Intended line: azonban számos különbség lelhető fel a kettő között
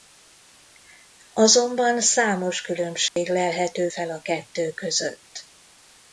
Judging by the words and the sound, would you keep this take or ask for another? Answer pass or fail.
fail